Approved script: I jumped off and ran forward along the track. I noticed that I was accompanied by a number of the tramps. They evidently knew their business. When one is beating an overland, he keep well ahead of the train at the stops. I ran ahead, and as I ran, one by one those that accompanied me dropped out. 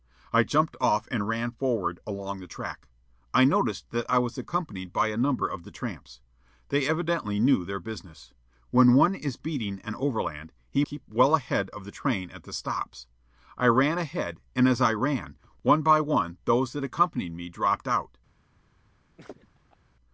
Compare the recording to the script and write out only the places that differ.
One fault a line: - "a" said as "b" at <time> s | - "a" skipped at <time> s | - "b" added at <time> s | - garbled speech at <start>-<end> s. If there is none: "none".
none